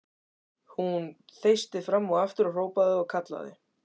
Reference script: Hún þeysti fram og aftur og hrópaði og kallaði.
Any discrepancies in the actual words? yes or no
no